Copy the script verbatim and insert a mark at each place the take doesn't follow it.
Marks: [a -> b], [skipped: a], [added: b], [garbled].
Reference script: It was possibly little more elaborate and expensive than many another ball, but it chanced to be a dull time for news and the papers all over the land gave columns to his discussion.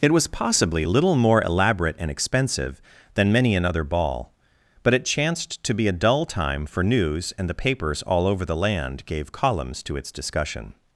It was possibly little more elaborate and expensive than many another ball, but it chanced to be a dull time for news and the papers all over the land gave columns to [his -> its] discussion.